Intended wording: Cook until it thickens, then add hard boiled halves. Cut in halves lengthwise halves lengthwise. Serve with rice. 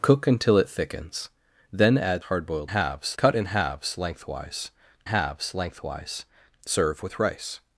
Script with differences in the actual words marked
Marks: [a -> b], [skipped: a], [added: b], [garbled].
Cook until it thickens, then add hard boiled halves. Cut in halves lengthwise halves lengthwise. Serve with rice.